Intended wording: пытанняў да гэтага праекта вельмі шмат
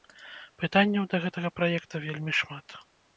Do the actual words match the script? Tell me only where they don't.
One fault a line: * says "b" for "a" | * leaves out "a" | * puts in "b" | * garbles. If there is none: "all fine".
all fine